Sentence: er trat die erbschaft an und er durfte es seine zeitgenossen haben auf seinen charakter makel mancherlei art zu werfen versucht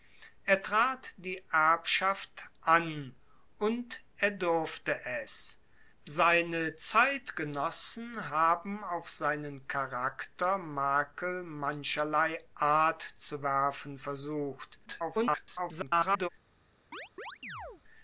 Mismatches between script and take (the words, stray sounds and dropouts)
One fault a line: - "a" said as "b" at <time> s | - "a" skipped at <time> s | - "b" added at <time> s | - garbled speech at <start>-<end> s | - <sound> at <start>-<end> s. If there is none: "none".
- garbled speech at 14.9-16.3 s
- chirp at 16.9-17.8 s